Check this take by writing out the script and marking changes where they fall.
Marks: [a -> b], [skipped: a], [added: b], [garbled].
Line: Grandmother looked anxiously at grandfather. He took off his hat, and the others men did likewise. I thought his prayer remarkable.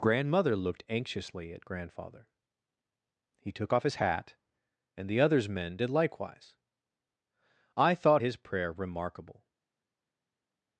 Grandmother looked anxiously at grandfather. He took off his hat, and the others men did likewise. I thought his prayer remarkable.